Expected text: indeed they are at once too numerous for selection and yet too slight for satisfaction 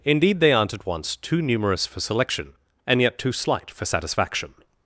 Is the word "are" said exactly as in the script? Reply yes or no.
no